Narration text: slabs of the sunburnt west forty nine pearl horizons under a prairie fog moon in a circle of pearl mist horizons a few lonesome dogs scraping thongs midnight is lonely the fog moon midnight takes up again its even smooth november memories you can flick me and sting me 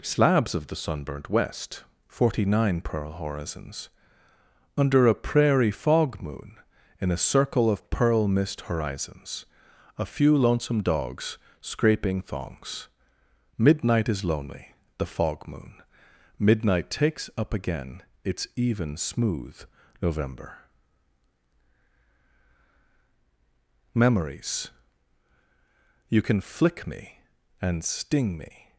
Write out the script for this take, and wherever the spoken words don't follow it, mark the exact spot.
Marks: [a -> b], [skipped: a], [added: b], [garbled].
slabs of the sunburnt west forty nine pearl horizons under a prairie fog moon in a circle of pearl mist horizons a few lonesome dogs scraping thongs midnight is lonely the fog moon midnight takes up again its even smooth november memories you can flick me and sting me